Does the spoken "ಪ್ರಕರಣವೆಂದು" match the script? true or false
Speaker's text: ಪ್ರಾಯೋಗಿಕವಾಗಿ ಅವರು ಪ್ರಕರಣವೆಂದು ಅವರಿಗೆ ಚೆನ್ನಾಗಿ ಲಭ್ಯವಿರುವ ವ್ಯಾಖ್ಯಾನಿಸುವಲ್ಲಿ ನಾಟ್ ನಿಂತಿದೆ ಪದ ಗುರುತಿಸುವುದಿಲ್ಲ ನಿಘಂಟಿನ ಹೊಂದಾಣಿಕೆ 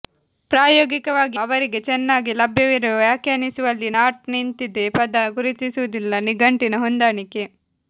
false